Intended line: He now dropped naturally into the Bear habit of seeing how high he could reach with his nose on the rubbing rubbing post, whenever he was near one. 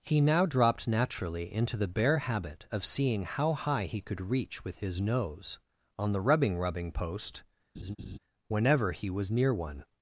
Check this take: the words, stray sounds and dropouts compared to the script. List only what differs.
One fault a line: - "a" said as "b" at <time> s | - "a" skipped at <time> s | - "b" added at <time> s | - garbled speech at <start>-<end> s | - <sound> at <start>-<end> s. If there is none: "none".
- laugh at 7.7-8.2 s